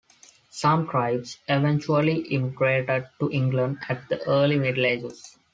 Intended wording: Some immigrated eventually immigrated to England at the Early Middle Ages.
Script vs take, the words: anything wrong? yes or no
yes